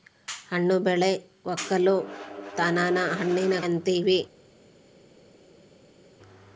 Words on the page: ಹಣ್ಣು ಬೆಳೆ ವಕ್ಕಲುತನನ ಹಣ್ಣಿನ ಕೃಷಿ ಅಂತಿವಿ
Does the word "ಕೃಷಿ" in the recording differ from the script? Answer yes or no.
yes